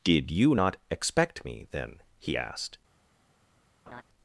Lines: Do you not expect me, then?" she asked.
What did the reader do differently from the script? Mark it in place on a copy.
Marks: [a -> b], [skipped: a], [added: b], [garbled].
[Do -> Did] you not expect me, then?" [she -> he] asked.